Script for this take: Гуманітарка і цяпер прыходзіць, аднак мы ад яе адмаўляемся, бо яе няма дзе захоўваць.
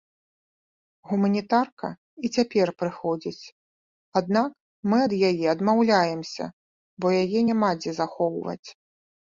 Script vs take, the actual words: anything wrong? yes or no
no